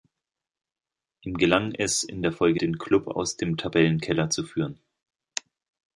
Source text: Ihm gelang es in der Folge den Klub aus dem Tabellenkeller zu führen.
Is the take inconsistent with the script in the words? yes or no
no